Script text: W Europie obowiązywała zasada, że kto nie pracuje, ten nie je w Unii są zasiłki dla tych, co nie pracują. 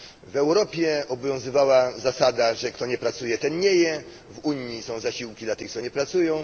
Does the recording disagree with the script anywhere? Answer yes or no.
no